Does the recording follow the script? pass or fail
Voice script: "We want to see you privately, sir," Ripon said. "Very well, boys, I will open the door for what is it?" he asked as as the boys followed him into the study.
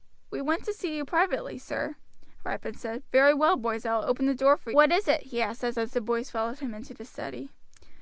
pass